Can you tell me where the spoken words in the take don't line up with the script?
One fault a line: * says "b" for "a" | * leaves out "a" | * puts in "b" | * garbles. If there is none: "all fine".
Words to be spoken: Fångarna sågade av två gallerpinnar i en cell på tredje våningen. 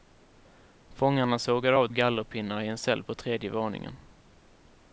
* leaves out "två"